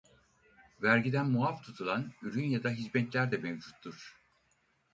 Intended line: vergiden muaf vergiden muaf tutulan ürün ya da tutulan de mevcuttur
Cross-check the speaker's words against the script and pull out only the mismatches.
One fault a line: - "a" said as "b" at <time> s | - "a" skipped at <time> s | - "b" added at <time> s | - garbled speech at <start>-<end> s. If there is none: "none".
- "vergiden muaf" skipped at 1.6 s
- "tutulan" said as "hizmetler" at 2.7 s